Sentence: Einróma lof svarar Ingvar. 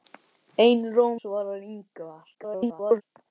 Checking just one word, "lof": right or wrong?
wrong